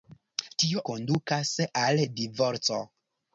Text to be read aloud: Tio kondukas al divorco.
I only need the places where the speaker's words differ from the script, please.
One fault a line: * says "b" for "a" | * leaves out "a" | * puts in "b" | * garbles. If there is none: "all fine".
all fine